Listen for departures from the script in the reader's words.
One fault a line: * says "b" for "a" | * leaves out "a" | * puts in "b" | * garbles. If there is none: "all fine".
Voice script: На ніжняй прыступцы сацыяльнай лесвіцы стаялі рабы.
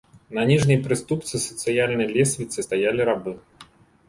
all fine